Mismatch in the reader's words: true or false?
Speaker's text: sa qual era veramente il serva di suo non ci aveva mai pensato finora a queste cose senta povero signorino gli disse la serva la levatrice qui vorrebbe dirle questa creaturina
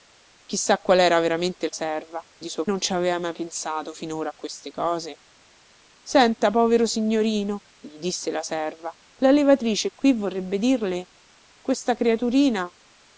false